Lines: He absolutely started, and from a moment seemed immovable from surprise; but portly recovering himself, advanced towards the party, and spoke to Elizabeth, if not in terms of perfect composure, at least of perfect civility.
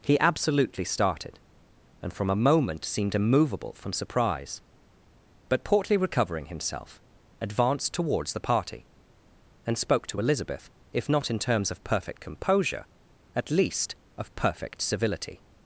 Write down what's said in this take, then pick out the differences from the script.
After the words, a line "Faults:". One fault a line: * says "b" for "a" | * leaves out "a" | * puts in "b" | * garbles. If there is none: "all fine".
He absolutely started, and from a moment seemed immovable from surprise; but portly recovering himself, advanced towards the party, and spoke to Elizabeth, if not in terms of perfect composure, at least of perfect civility.
Faults:
all fine